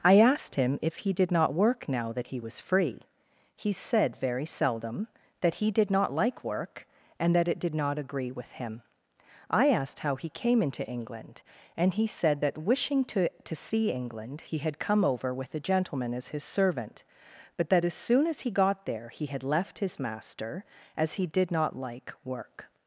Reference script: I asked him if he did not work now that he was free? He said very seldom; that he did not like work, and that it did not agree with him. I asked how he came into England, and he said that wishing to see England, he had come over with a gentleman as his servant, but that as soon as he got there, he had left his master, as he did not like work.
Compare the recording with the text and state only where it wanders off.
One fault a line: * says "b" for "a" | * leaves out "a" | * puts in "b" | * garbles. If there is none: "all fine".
* puts in "to"